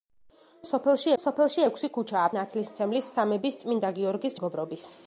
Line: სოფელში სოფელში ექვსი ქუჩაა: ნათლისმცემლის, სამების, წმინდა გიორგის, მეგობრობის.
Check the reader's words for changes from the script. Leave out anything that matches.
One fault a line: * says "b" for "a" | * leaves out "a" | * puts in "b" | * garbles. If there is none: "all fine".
all fine